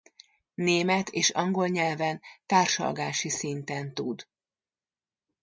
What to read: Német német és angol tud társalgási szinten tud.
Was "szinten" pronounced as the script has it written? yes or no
yes